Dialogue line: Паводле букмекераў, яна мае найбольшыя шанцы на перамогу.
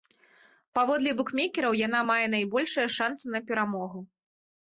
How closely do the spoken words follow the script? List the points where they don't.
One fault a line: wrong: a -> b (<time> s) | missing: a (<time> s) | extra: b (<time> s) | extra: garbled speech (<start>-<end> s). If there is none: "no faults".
no faults